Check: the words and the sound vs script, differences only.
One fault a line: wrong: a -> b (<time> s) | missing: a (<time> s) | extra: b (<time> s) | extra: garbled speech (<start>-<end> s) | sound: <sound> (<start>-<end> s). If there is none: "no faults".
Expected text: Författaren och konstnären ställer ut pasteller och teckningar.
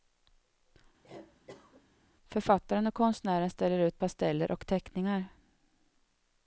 sound: cough (1.0-1.9 s)